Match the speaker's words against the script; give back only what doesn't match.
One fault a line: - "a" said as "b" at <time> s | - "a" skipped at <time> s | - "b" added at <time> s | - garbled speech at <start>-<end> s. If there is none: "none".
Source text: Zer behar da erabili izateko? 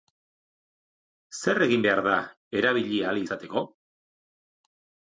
- "egin" added at 1.7 s
- "ahal" added at 3.1 s